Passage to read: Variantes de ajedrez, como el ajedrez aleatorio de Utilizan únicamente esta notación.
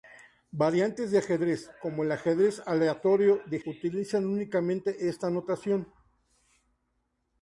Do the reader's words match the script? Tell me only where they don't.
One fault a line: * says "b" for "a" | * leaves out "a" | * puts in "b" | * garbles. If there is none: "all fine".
all fine